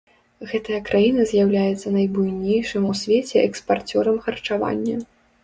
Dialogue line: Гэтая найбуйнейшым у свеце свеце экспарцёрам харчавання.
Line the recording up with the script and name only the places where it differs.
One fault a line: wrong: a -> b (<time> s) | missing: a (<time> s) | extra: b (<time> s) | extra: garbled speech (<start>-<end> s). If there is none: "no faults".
extra: краіна з'яўляецца (0.9 s)
missing: свеце (3.4 s)